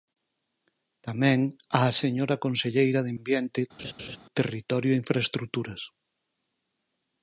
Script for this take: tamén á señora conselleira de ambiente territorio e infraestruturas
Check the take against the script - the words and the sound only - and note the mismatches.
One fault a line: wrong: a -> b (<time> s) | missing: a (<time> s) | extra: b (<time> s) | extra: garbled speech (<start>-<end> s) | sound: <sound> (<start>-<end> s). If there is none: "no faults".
sound: laugh (3.8-4.2 s)